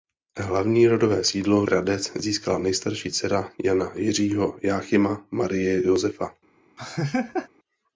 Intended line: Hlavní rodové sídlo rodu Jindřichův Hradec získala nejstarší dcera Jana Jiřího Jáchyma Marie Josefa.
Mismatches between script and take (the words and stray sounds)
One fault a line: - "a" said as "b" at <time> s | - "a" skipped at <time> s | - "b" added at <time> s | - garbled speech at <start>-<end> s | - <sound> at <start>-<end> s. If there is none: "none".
- "rodu Jindřichův" skipped at 1.6 s
- laugh at 6.8-7.5 s